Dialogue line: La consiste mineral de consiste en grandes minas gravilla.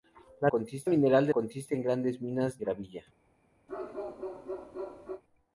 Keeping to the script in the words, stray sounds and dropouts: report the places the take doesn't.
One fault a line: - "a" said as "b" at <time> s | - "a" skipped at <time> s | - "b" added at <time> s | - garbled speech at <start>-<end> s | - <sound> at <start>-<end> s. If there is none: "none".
- bark at 3.7-5.2 s